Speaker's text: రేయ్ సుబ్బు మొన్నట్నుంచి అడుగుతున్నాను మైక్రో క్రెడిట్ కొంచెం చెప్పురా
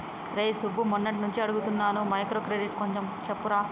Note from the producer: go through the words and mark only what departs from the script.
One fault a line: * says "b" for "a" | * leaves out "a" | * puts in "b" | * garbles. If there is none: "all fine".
all fine